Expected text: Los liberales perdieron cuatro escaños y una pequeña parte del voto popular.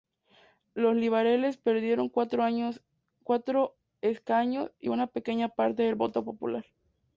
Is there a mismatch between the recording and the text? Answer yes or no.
no